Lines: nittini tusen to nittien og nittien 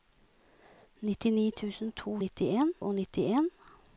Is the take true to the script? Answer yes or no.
yes